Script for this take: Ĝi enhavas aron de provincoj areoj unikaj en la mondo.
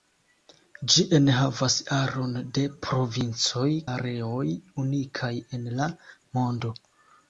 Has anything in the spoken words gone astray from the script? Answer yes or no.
no